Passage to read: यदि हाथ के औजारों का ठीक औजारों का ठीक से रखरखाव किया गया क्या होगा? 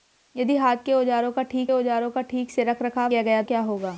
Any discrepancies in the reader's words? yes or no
no